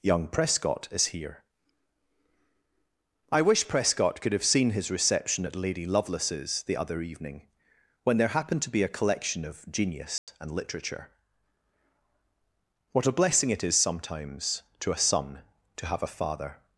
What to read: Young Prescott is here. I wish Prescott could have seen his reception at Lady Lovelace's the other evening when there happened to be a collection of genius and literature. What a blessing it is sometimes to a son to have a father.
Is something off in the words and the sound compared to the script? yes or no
yes